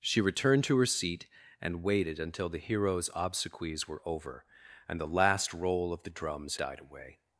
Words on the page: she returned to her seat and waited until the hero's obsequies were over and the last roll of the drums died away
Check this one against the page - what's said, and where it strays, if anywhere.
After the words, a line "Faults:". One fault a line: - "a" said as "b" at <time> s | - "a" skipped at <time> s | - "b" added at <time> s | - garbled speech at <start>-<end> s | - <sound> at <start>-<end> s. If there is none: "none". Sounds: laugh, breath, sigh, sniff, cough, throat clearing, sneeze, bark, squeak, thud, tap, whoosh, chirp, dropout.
she returned to her seat and waited until the hero's obsequies were over and the last roll of the drums died away
Faults:
none